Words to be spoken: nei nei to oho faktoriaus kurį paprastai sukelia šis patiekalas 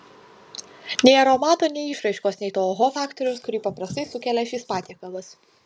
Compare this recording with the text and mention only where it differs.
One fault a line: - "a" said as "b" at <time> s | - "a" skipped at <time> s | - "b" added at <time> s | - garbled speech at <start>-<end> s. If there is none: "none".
- "aromato nei išraiškos" added at 1.2 s